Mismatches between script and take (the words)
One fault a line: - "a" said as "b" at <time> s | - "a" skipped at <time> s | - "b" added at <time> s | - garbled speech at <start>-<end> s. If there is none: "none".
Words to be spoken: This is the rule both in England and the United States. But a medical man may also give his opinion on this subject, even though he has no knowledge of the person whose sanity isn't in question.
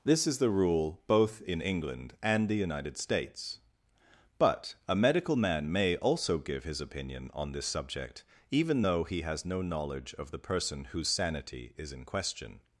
- "isn't" said as "is" at 11.8 s